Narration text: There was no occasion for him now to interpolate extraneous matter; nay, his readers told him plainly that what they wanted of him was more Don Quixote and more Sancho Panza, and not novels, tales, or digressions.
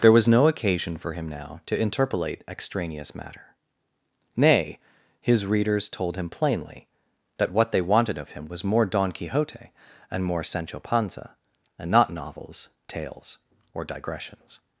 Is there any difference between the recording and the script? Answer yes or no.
no